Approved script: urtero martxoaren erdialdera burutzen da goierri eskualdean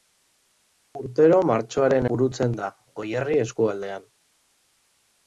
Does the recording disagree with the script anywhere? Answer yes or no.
yes